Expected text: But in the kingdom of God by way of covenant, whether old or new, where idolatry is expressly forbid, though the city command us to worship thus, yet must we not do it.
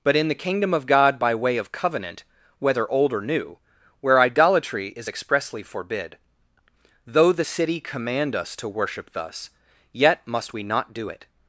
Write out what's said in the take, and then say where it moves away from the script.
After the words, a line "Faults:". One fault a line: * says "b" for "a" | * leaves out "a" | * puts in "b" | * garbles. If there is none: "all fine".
But in the kingdom of God by way of covenant, whether old or new, where idolatry is expressly forbid, though the city command us to worship thus, yet must we not do it.
Faults:
all fine